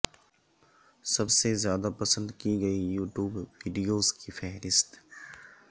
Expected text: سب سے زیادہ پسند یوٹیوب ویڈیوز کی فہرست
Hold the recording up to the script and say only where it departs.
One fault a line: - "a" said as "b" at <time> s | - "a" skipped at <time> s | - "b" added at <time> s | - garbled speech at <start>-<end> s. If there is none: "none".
- "کی گئی" added at 2.4 s